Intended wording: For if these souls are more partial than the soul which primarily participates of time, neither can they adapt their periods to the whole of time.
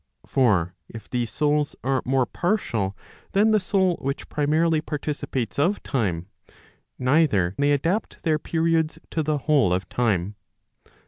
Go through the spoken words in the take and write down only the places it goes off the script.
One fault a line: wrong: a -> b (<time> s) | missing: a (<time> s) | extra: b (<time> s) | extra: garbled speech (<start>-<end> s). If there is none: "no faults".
missing: can (7.6 s)